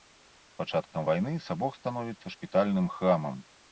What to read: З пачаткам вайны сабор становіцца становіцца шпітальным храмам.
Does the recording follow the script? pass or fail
fail